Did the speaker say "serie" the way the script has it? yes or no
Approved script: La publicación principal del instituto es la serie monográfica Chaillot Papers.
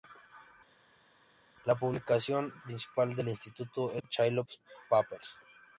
no